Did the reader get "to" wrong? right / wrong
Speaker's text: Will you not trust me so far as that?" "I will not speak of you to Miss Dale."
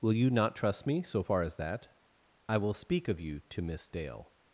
right